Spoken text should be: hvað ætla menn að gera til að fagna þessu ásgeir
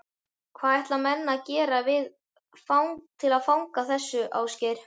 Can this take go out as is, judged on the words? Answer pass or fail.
pass